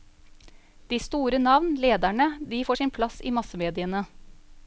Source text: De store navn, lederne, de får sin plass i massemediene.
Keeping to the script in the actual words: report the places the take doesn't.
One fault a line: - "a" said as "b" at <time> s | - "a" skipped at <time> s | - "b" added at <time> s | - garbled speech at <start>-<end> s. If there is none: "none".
none